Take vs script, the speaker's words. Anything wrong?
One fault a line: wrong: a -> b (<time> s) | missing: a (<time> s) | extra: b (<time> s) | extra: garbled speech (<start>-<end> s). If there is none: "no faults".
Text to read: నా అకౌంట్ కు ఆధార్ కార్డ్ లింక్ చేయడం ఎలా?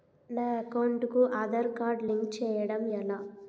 no faults